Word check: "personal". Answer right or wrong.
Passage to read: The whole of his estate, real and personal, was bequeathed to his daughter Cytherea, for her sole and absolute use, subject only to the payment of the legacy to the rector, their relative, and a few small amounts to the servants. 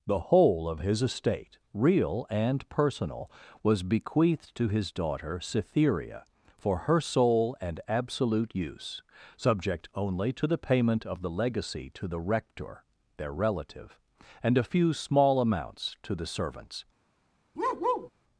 right